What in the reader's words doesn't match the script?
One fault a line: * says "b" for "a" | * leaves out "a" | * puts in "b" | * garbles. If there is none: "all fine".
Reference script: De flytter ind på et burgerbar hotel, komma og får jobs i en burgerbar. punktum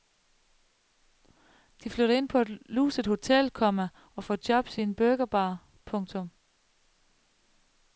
* says "luset" for "burgerbar"